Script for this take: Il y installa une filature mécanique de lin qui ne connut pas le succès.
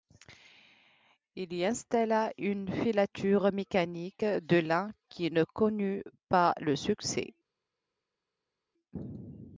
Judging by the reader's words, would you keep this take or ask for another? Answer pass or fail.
pass